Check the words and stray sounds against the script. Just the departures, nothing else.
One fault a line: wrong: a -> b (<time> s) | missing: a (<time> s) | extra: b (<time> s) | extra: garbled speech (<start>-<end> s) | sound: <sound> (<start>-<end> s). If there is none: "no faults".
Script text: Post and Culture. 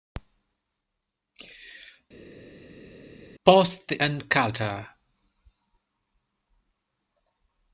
no faults